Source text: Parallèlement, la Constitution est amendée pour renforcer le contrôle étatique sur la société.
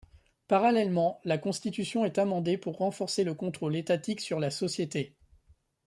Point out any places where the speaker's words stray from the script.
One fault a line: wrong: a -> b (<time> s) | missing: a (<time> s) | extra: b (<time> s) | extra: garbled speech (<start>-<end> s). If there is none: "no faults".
no faults